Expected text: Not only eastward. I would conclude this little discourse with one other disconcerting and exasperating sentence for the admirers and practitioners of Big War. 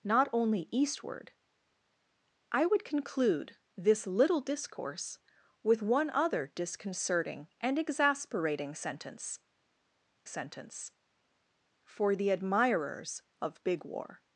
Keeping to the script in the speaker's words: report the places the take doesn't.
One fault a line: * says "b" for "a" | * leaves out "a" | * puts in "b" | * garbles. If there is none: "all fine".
* puts in "sentence"
* leaves out "and practitioners"